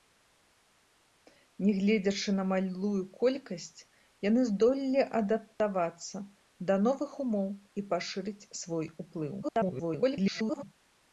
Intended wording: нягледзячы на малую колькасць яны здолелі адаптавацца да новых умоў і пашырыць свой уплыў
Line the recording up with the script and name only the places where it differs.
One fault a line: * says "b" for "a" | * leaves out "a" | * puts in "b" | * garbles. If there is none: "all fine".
* garbles